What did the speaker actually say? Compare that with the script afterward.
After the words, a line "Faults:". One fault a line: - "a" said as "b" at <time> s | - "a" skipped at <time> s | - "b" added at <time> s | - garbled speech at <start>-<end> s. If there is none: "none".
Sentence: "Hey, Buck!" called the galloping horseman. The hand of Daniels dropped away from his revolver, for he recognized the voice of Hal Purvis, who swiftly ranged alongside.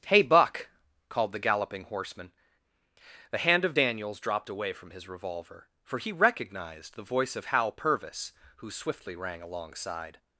"Hey, Buck!" called the galloping horseman. The hand of Daniels dropped away from his revolver, for he recognized the voice of Hal Purvis, who swiftly rang alongside.
Faults:
- "ranged" said as "rang" at 9.2 s